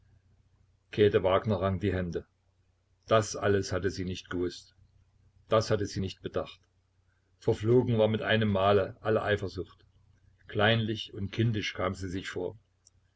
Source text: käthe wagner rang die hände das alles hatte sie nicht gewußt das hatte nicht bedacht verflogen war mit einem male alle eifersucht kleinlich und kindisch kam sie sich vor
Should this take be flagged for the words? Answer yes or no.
yes